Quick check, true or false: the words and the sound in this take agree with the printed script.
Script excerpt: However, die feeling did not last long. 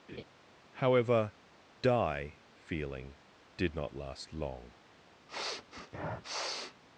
false